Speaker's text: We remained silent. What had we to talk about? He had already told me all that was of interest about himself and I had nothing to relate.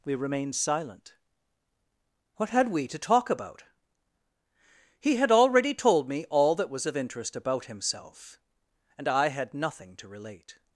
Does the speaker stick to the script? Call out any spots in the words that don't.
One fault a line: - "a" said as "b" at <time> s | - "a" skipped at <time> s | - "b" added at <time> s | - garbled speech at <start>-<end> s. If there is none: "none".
none